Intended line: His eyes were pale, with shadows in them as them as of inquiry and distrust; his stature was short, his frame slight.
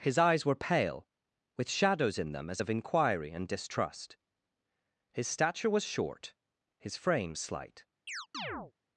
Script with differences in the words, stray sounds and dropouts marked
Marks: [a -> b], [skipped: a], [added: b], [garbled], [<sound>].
His eyes were pale, with shadows in them as [skipped: them as] of inquiry and distrust; his stature was short, his frame slight. [chirp]